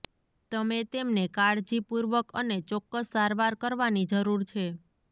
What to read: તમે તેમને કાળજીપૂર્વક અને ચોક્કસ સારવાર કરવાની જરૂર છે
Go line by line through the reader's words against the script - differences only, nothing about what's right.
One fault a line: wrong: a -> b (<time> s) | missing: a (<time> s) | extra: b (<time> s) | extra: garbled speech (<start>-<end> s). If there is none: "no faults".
no faults